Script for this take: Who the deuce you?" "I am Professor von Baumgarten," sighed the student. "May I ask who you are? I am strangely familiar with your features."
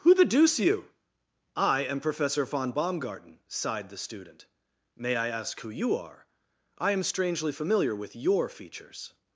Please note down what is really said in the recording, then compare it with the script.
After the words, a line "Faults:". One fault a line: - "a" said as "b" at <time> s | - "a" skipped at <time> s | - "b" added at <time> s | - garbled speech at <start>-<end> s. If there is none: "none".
Who the deuce you?" "I am Professor von Baumgarten," sighed the student. "May I ask who you are? I am strangely familiar with your features."
Faults:
none